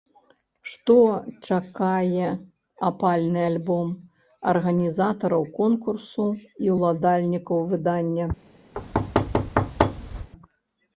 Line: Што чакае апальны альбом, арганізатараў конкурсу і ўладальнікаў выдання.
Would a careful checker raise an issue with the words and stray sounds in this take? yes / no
yes